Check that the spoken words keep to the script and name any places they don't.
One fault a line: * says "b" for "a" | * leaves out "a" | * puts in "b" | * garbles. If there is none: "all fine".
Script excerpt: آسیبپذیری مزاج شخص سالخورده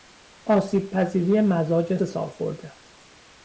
* leaves out "شخص"